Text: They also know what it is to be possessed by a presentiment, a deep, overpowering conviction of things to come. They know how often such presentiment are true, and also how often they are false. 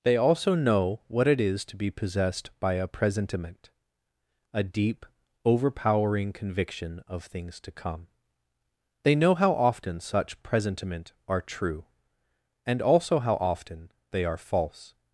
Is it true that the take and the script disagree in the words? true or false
false